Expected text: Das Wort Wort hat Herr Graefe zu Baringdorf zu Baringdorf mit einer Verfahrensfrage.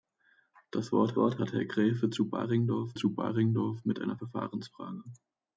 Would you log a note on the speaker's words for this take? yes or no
no